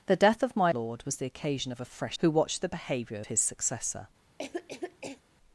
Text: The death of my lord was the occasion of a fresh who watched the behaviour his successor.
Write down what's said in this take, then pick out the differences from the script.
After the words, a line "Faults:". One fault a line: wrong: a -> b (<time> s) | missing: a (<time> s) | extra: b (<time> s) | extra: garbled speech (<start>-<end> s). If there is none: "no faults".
The death of my lord was the occasion of a fresh who watched the behaviour his successor.
Faults:
no faults